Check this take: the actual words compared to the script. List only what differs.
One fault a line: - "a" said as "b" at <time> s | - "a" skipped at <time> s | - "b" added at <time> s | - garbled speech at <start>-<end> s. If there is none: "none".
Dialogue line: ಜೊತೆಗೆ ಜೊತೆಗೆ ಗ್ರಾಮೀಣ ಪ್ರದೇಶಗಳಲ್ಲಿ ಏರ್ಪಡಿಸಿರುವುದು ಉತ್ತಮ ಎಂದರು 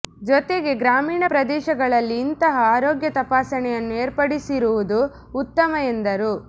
- "ಜೊತೆಗೆ" skipped at 0.7 s
- "ಇಂತಹ ಆರೋಗ್ಯ ತಪಾಸಣೆಯನ್ನು" added at 2.2 s